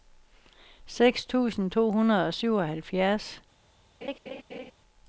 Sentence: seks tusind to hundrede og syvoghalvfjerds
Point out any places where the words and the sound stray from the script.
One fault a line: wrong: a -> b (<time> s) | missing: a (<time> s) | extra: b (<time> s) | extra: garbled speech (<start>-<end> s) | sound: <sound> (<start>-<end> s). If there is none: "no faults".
sound: laugh (4.0-4.7 s)